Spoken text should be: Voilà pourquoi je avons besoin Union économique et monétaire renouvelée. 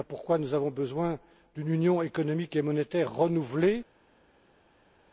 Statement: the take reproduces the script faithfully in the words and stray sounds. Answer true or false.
false